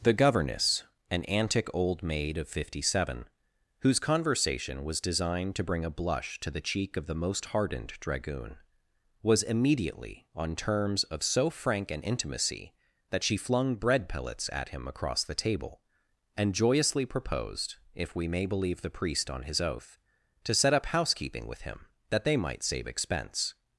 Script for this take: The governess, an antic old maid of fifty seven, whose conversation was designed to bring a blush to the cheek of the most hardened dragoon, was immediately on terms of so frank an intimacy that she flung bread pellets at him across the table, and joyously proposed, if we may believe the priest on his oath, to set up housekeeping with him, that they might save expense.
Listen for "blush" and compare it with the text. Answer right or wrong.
right